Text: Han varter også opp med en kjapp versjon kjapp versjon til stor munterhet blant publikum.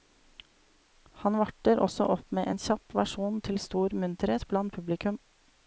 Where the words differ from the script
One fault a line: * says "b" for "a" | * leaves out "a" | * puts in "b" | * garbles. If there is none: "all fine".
* leaves out "kjapp versjon"